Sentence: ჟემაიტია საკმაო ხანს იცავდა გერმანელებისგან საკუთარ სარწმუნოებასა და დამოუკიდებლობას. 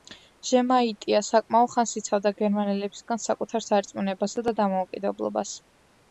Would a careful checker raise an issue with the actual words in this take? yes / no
no